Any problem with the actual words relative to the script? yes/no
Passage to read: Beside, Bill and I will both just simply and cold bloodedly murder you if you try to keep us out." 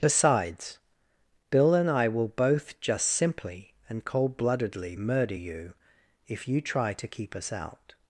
yes